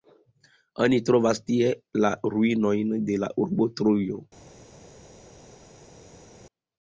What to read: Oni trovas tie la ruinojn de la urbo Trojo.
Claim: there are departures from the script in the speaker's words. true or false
false